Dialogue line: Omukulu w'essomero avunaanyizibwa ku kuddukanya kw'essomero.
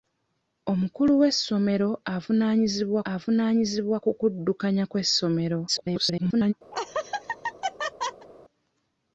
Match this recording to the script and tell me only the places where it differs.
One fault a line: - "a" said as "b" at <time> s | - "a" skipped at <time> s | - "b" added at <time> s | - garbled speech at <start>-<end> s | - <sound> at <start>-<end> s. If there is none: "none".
- "avunaanyizibwa" added at 3.1 s
- garbled speech at 5.7-6.5 s
- laugh at 6.7-8.3 s